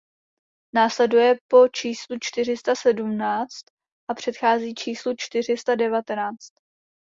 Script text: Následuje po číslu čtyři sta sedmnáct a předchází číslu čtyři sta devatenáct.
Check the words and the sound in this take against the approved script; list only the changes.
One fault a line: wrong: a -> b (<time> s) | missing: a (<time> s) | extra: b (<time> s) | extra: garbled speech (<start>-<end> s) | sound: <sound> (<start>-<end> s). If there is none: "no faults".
no faults